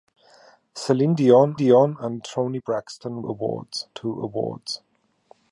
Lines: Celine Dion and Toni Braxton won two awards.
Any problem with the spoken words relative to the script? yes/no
yes